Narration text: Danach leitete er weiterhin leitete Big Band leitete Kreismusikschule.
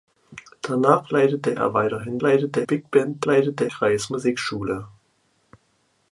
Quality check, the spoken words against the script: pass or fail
pass